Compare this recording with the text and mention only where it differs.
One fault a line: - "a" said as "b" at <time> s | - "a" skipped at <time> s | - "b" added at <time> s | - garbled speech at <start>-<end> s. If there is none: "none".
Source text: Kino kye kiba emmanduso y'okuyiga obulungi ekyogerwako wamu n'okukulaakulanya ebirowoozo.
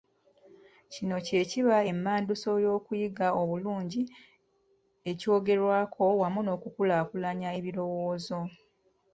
none